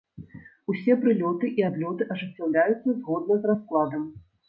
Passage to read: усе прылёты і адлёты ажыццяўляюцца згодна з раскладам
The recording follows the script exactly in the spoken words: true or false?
true